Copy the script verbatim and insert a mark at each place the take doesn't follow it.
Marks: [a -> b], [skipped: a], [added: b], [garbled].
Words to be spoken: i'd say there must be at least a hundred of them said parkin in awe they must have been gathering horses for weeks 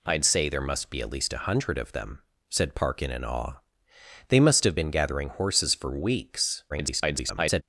i'd say there must be at least a hundred of them said parkin in awe they must have been gathering horses for weeks [garbled]